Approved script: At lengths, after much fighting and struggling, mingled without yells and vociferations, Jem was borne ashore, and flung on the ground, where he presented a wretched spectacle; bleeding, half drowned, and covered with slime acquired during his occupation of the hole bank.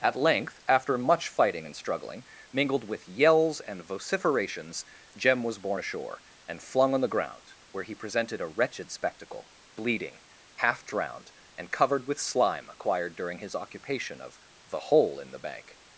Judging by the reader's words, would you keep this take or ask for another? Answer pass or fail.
fail